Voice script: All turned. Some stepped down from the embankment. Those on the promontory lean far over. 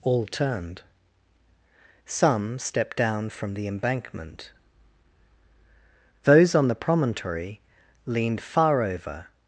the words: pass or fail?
fail